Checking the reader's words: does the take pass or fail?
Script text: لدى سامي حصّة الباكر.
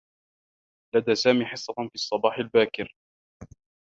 fail